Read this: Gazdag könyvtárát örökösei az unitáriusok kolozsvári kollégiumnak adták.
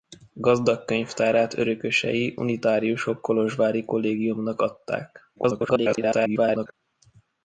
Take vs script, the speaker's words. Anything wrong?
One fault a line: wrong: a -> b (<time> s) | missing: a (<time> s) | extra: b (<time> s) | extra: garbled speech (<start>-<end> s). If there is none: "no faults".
missing: az (2.4 s)
extra: garbled speech (5.4-6.7 s)